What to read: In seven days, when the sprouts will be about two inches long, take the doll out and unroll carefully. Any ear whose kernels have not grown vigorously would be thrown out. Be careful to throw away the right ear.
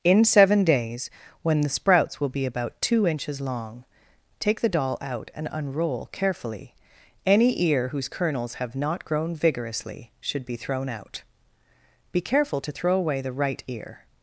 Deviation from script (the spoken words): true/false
true